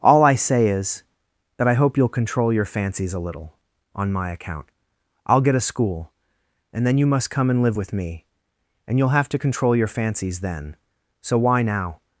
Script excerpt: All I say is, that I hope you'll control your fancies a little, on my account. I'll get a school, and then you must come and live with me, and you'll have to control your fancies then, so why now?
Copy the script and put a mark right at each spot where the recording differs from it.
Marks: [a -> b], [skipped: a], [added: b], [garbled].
All I say is, that I hope you'll control your fancies a little, on my account. I'll get a school, and then you must come and live with me, and you'll have to control your fancies then, so why now?